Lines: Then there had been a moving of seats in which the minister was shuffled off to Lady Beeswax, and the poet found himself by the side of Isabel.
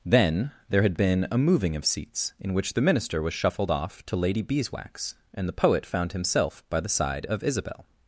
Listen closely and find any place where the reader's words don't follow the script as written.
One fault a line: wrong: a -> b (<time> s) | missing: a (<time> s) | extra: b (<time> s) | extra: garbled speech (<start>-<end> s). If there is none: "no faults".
no faults